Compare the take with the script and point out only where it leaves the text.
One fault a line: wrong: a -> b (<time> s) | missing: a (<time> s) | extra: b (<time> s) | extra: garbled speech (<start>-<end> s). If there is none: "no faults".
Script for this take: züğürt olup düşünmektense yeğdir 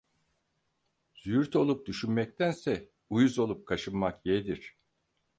extra: uyuz olup kaşınmak (3.1 s)